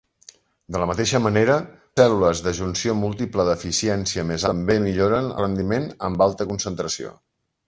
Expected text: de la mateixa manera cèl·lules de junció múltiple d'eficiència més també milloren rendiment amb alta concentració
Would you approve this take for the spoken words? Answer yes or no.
yes